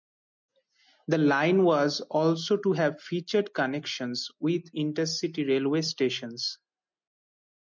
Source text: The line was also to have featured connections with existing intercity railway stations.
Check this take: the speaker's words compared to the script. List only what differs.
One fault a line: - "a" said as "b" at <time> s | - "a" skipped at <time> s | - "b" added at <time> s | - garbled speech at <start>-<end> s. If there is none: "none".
- "existing" skipped at 4.6 s